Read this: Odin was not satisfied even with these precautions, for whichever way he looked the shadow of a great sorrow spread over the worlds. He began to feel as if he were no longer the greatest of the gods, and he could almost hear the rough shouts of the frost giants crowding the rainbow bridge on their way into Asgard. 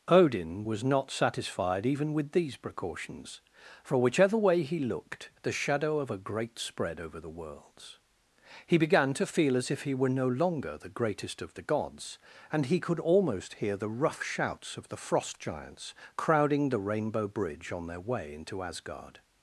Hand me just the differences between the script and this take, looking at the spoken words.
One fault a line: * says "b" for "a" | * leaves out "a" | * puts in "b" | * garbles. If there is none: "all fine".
* leaves out "sorrow"